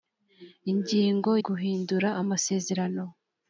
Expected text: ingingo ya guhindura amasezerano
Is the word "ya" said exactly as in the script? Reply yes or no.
no